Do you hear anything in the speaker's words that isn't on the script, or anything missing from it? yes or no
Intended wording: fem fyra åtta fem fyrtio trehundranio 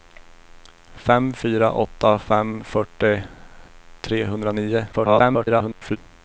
yes